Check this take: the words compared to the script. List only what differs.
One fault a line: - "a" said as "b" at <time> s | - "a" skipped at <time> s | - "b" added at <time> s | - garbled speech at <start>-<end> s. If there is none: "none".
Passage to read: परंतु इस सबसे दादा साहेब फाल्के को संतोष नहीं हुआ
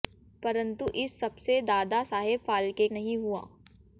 - "को संतोष" skipped at 2.9 s